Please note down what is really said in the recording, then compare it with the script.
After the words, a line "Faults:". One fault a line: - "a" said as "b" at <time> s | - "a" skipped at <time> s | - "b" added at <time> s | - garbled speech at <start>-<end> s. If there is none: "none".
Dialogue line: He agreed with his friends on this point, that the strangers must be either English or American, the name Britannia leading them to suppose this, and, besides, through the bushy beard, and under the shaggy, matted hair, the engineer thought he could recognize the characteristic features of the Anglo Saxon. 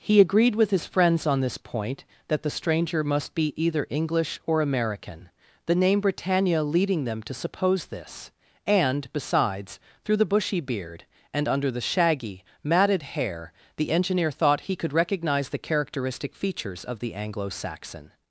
He agreed with his friends on this point, that the stranger must be either English or American, the name Britannia leading them to suppose this, and, besides, through the bushy beard, and under the shaggy, matted hair, the engineer thought he could recognize the characteristic features of the Anglo Saxon.
Faults:
- "strangers" said as "stranger" at 2.5 s